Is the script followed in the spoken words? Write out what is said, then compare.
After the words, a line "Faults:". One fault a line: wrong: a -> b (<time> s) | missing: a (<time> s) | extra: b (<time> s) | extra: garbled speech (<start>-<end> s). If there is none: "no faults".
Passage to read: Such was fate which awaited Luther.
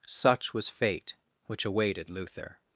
Such was fate which awaited Luther.
Faults:
no faults